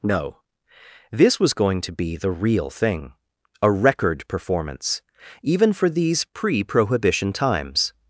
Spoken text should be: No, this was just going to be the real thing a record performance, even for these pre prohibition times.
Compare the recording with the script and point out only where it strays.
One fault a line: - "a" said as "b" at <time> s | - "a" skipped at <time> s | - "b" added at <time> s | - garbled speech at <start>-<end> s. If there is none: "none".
- "just" skipped at 1.5 s